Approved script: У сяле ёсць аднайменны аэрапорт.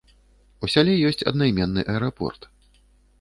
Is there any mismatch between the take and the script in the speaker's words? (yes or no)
no